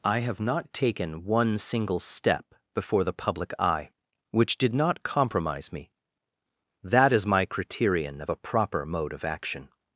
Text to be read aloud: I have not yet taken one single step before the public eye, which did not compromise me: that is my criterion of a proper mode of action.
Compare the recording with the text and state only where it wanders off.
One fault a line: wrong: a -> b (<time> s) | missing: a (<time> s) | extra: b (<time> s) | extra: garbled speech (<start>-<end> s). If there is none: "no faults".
missing: yet (0.7 s)